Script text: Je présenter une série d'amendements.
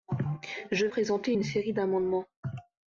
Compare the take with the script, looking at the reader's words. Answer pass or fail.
pass